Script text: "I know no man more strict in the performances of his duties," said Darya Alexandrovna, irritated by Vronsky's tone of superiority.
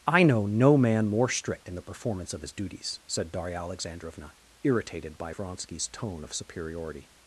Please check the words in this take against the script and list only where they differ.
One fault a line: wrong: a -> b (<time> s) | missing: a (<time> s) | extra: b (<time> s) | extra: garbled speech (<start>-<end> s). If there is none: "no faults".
wrong: performances -> performance (1.8 s)